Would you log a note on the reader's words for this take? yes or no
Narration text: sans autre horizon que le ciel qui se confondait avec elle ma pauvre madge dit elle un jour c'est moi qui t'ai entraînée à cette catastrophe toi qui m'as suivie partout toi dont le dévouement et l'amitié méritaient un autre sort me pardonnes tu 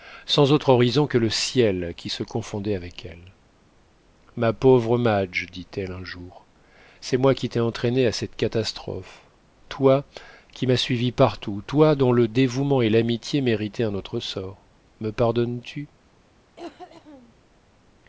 no